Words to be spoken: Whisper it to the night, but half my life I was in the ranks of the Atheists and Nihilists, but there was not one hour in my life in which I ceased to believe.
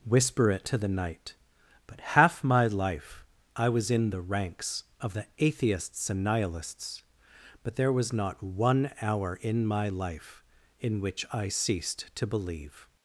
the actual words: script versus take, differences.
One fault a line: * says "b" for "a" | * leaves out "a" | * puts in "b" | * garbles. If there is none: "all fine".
all fine